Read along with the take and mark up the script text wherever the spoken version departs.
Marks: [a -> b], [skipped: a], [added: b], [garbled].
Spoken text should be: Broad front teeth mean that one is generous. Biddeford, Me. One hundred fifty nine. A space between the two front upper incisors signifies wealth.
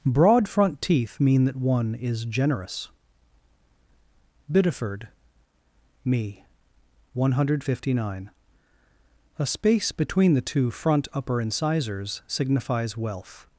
Broad front teeth mean that one is generous. Biddeford, Me. One hundred fifty nine. A space between the two front upper incisors signifies wealth.